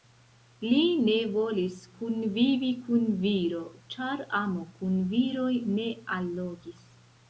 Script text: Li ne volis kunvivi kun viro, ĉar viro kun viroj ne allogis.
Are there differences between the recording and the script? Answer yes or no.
yes